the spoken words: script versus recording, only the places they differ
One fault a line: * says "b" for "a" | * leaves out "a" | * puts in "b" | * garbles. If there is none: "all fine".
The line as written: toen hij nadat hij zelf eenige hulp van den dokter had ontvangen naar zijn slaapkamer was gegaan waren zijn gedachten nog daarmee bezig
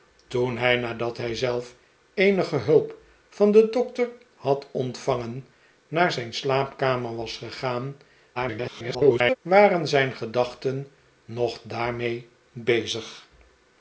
* garbles